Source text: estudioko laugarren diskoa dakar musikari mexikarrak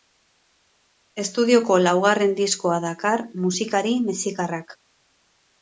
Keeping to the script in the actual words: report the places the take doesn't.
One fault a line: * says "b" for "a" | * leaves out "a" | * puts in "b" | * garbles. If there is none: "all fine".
all fine